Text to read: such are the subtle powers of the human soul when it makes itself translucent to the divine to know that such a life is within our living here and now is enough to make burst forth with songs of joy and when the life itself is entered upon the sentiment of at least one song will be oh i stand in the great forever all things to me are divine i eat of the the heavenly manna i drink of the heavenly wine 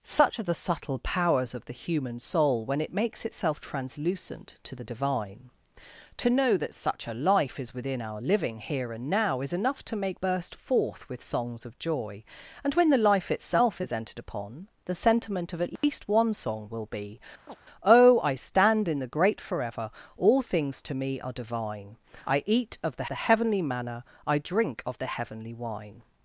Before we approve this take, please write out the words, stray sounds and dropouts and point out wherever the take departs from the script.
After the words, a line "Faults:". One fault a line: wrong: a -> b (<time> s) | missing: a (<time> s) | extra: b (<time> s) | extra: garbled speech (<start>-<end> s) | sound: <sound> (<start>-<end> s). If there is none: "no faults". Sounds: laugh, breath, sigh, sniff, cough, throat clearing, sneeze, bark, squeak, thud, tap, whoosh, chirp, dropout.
such are the subtle powers of the human soul when it makes itself translucent to the divine to know that such a life is within our living here and now is enough to make burst forth with songs of joy and when the life itself is entered upon the sentiment of at least one song will be oh i stand in the great forever all things to me are divine i eat of the the heavenly manna i drink of the heavenly wine
Faults:
sound: dropout (15.8-15.8 s)
sound: chirp (17.5-17.6 s)